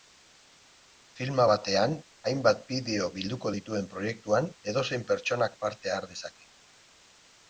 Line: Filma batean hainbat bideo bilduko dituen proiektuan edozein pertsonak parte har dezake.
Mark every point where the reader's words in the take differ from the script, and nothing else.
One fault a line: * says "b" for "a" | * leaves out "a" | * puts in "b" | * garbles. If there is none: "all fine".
all fine